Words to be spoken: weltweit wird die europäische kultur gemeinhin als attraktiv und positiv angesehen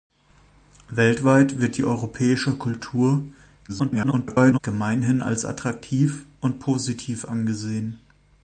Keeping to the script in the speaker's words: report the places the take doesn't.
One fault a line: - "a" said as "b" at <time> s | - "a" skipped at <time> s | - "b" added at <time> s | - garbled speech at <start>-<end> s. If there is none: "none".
- garbled speech at 3.7-4.6 s